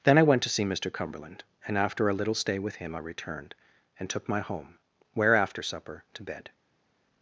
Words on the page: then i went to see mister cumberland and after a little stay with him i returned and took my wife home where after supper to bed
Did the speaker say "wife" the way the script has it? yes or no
no